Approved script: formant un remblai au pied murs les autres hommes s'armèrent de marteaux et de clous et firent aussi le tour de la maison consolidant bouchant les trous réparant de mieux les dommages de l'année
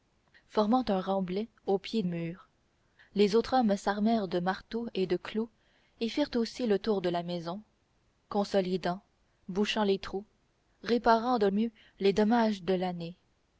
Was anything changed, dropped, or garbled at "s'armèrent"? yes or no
no